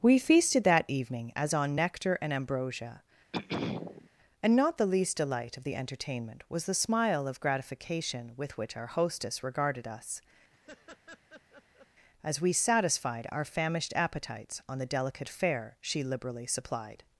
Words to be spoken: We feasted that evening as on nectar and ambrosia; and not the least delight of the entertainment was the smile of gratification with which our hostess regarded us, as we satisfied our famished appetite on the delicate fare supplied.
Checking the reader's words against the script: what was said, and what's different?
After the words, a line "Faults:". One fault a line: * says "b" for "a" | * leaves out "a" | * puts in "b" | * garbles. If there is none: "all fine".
We feasted that evening as on nectar and ambrosia; and not the least delight of the entertainment was the smile of gratification with which our hostess regarded us, as we satisfied our famished appetites on the delicate fare she liberally supplied.
Faults:
* says "appetites" for "appetite"
* puts in "she liberally"